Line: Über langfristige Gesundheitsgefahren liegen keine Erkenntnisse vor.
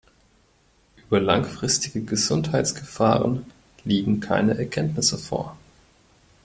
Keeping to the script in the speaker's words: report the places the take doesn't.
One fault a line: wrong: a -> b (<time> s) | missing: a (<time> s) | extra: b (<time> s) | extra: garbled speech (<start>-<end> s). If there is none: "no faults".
no faults